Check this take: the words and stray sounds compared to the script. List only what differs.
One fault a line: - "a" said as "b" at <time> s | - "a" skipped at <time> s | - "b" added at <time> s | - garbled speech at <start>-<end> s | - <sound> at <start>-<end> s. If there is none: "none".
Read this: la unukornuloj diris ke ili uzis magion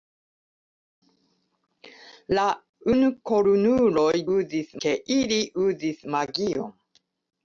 - "diris" said as "uzis" at 4.4 s